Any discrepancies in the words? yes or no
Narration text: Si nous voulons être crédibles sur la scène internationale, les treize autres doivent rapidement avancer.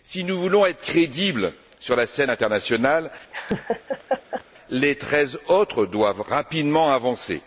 no